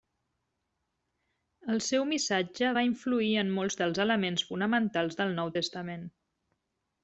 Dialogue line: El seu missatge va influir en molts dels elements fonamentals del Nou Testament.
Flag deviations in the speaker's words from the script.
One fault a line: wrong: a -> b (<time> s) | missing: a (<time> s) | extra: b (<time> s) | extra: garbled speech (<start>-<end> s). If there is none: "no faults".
no faults